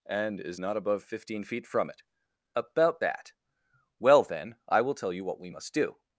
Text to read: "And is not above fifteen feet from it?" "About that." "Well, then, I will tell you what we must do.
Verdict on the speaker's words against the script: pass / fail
pass